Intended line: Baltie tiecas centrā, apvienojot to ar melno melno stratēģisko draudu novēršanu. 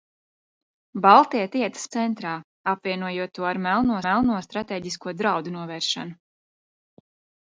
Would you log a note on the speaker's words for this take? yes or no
no